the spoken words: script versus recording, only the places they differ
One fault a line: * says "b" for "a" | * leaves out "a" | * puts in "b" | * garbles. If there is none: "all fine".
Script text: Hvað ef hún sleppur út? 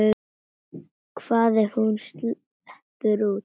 all fine